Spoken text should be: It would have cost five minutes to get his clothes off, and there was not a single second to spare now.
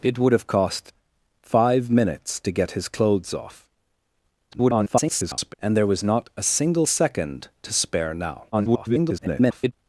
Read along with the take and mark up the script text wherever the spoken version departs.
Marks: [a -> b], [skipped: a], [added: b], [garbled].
It would have cost five minutes to get his clothes off, [garbled] and there was not a single second to spare now. [garbled]